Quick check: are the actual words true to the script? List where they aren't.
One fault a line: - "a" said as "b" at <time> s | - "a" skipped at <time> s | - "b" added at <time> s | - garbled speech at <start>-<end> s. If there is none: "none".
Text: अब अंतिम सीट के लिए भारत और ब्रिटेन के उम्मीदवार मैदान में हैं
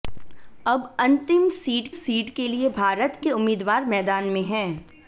- "सीट" added at 1.9 s
- "और ब्रिटेन" skipped at 3.2 s